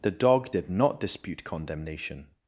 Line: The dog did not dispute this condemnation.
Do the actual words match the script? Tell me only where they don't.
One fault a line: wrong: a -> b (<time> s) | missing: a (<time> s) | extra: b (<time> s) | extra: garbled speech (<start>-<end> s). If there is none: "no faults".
missing: this (1.4 s)